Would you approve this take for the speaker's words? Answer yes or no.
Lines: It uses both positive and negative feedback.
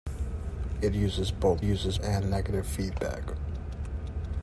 no